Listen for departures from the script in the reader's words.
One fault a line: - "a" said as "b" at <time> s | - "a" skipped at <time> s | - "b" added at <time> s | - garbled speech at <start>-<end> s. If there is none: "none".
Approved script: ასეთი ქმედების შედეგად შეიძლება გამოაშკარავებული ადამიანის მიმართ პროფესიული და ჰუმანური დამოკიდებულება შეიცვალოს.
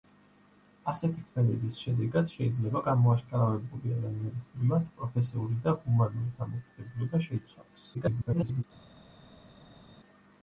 - garbled speech at 7.9-8.6 s